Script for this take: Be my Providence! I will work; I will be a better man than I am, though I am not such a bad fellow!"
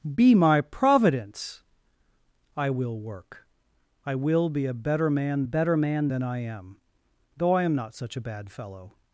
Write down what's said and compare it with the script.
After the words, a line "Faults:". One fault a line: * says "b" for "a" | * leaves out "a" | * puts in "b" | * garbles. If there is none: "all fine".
Be my Providence! I will work; I will be a better man better man than I am, though I am not such a bad fellow!"
Faults:
* puts in "better man"